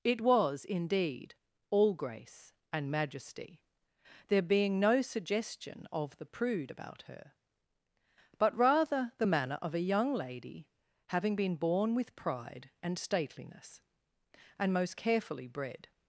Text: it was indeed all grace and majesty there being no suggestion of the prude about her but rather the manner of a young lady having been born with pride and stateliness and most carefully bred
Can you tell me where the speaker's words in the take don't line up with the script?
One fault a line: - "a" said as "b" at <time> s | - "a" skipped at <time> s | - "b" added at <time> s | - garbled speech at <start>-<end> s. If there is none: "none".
none